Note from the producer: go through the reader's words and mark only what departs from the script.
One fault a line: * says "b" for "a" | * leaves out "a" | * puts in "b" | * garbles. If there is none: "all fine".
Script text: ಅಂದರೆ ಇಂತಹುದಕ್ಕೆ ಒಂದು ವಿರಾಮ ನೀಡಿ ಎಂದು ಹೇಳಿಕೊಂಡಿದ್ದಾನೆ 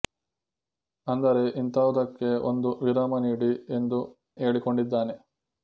all fine